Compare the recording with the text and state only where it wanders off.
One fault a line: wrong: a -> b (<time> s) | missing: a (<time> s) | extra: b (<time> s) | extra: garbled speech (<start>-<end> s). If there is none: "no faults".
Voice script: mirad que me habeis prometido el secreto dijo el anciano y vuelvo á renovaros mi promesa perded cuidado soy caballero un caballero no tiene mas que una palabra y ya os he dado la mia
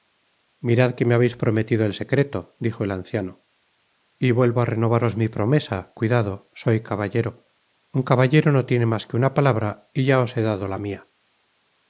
missing: perded (5.8 s)